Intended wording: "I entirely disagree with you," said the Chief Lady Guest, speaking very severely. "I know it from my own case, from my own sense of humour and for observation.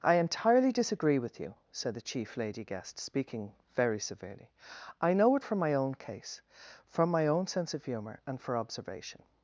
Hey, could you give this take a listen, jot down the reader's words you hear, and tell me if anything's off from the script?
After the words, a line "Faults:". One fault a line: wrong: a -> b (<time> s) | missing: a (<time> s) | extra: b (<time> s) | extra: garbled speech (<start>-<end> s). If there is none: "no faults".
"I entirely disagree with you," said the Chief Lady Guest, speaking very severely. "I know it from my own case, from my own sense of humour and for observation.
Faults:
no faults